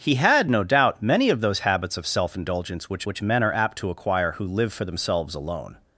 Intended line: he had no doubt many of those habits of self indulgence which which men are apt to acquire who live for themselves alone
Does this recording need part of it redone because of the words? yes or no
no